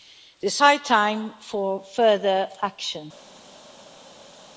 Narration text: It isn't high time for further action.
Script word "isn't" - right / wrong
wrong